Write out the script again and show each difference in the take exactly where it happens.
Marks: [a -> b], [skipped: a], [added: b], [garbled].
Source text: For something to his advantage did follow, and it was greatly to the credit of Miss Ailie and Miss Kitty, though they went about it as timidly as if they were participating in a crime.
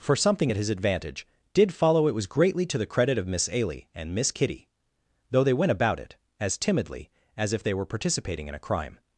For something [to -> at] his advantage did follow, [skipped: and] it was greatly to the credit of Miss Ailie and Miss Kitty, though they went about it as timidly as if they were participating in a crime.